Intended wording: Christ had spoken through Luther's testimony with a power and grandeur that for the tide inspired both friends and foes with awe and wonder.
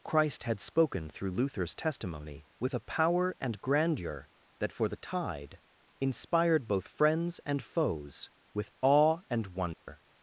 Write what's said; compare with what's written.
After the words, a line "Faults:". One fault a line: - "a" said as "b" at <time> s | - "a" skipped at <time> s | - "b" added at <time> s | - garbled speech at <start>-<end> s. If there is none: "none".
Christ had spoken through Luther's testimony with a power and grandeur that for the tide inspired both friends and foes with awe and wonder.
Faults:
none